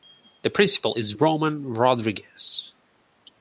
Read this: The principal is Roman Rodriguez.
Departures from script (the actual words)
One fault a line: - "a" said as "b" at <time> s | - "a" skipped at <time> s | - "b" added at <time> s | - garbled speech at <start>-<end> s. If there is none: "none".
none